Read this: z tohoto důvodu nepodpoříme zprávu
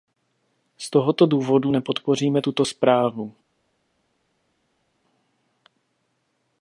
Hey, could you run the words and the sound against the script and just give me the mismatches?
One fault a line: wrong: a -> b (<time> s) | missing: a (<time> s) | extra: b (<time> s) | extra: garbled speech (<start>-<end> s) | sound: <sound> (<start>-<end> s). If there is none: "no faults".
extra: tuto (2.4 s)